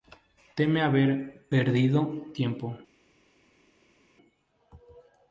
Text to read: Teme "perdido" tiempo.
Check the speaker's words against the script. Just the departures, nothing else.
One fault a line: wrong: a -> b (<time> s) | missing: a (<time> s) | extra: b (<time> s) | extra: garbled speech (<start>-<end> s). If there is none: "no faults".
extra: haber (0.8 s)